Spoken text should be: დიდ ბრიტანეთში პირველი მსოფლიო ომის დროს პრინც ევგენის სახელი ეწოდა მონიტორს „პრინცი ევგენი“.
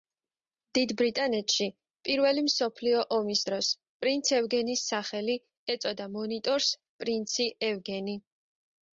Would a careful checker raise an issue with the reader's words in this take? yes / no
no